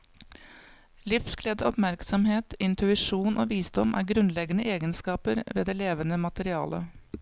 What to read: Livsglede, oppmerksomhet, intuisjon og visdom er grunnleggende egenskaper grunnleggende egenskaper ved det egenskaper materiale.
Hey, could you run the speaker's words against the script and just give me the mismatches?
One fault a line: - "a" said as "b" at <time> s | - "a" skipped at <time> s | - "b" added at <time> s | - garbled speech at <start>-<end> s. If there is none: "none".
- "grunnleggende egenskaper" skipped at 5.4 s
- "egenskaper" said as "levende" at 5.8 s